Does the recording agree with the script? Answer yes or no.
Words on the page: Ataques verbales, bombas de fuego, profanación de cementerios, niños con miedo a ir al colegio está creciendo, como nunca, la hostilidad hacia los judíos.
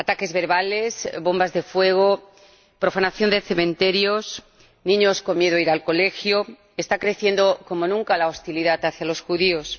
yes